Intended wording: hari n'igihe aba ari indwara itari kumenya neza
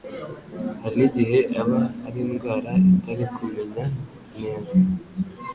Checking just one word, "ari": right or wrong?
right